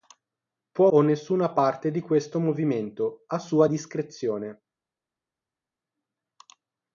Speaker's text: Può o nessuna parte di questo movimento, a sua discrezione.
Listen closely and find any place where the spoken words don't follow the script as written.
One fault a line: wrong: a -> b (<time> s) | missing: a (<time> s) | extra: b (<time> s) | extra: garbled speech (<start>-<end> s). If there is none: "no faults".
no faults